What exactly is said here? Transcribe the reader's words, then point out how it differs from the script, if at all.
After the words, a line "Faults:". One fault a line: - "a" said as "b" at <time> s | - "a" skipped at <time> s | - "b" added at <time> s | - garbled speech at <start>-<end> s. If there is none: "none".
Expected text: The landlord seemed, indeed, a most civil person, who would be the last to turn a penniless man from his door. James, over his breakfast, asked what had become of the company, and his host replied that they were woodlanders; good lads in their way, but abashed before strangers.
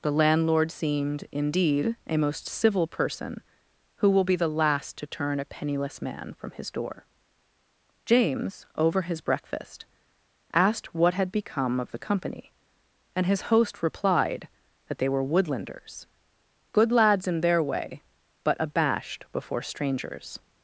The landlord seemed, indeed, a most civil person, who will be the last to turn a penniless man from his door. James, over his breakfast, asked what had become of the company, and his host replied that they were woodlanders; good lads in their way, but abashed before strangers.
Faults:
- "would" said as "will" at 4.1 s